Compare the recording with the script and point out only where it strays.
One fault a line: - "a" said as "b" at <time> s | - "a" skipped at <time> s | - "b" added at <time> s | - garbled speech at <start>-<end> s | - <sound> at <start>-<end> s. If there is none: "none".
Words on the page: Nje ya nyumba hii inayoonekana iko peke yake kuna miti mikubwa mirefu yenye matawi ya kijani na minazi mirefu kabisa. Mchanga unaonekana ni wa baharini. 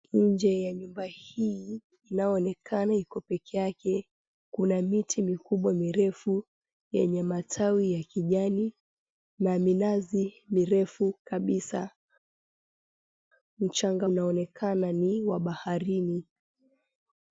none